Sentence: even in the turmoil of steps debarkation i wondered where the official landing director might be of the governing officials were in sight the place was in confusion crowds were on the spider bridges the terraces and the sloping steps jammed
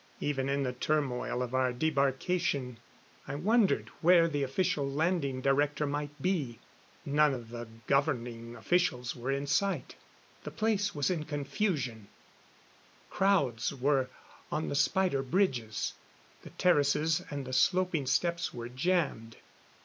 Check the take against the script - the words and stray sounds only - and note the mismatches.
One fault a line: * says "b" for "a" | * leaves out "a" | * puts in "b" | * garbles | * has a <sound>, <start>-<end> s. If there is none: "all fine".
* says "our" for "steps"
* puts in "none"
* puts in "were"